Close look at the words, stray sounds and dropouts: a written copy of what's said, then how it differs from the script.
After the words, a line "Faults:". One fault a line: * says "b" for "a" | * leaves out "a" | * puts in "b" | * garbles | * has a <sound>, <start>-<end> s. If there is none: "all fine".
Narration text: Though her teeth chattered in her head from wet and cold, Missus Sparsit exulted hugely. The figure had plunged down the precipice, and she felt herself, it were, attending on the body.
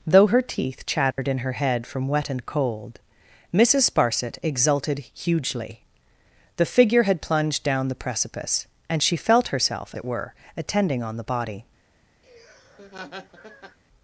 Though her teeth chattered in her head from wet and cold, Missus Sparsit exulted hugely. The figure had plunged down the precipice, and she felt herself, it were, attending on the body.
Faults:
* has a dropout, 1.1-1.2 s
* has a laugh, 12.2-13.8 s